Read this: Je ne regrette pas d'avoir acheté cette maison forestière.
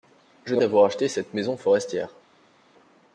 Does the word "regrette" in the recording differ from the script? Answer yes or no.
yes